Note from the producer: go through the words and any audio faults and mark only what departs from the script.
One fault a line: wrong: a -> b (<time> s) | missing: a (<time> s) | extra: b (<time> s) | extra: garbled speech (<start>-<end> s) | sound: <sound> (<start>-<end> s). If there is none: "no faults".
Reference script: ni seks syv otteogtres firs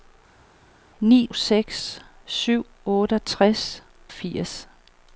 no faults